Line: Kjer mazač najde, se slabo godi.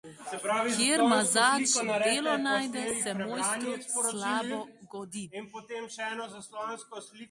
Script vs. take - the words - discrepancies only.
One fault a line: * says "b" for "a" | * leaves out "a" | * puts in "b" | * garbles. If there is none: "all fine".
* puts in "delo"
* puts in "mojstru"